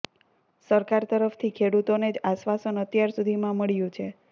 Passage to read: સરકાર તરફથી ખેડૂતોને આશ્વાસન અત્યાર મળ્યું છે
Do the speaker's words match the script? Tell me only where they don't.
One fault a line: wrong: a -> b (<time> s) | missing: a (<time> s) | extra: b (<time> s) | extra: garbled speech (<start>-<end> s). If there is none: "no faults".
extra: જ (2.1 s)
extra: સુધીમાં (3.2 s)